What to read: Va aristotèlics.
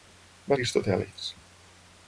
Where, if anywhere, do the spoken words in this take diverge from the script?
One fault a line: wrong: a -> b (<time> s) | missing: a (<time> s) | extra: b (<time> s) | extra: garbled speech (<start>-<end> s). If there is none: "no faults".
no faults